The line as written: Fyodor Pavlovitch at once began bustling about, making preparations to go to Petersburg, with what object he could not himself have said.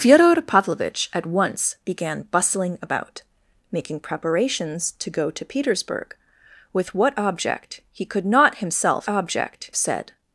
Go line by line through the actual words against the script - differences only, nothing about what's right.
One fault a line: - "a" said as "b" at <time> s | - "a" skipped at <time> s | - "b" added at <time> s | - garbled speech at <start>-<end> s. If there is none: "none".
- "have" said as "object" at 9.1 s